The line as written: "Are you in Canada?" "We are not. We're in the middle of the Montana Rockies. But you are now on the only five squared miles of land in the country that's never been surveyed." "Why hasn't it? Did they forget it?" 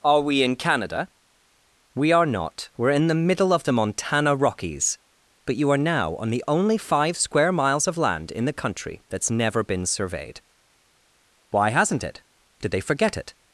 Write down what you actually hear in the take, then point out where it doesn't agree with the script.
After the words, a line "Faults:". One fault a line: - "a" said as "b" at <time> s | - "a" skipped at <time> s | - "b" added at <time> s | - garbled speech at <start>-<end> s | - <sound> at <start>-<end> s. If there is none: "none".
"Are we in Canada?" "We are not. We're in the middle of the Montana Rockies. But you are now on the only five square miles of land in the country that's never been surveyed." "Why hasn't it? Did they forget it?"
Faults:
- "you" said as "we" at 0.2 s
- "squared" said as "square" at 7.2 s